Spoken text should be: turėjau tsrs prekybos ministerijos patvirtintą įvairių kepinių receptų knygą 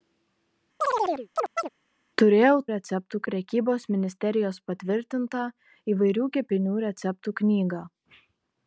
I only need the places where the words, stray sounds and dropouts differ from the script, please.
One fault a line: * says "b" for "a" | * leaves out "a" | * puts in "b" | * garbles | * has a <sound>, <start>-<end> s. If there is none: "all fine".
* has a chirp, 0.8-1.7 s
* says "receptų" for "tsrs"